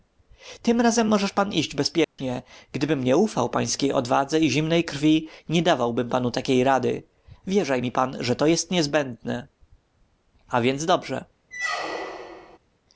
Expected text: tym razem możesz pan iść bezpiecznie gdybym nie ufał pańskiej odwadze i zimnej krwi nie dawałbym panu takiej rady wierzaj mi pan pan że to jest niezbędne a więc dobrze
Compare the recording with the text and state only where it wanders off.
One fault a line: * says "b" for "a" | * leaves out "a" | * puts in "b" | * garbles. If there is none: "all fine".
* leaves out "pan"